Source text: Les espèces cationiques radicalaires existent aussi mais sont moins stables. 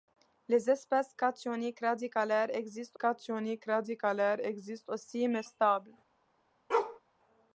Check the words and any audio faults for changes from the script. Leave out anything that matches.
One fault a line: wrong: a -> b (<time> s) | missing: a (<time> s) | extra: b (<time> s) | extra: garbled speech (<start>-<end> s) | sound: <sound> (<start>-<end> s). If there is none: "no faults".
extra: cationiques radicalaires existent (2.9 s)
missing: sont moins (5.4 s)
sound: bark (6.7-7.0 s)